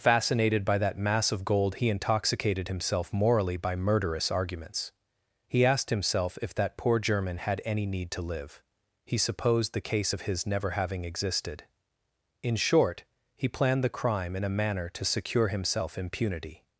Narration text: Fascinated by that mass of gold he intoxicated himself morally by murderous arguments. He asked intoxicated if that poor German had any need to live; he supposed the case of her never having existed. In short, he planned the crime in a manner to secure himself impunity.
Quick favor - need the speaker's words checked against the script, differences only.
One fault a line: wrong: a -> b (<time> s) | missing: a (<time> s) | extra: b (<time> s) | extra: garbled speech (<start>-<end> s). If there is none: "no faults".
wrong: intoxicated -> himself (5.9 s)
wrong: her -> his (10.3 s)